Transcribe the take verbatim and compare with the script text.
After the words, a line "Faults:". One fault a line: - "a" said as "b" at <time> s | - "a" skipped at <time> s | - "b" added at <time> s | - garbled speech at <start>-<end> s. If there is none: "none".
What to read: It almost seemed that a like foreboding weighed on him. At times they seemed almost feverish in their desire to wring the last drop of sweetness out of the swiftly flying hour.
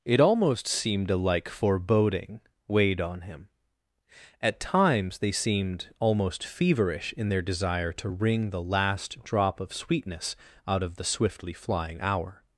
It almost seemed a like foreboding weighed on him. At times they seemed almost feverish in their desire to wring the last drop of sweetness out of the swiftly flying hour.
Faults:
- "that" skipped at 1.1 s